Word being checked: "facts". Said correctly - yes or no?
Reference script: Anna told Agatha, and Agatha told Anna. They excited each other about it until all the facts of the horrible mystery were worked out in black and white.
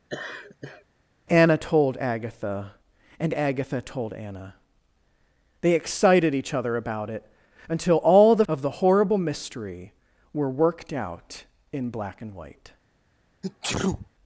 no